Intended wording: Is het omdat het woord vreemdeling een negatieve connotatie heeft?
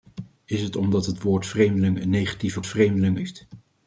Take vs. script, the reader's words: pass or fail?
fail